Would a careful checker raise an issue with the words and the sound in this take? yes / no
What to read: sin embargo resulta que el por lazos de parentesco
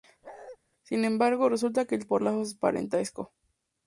yes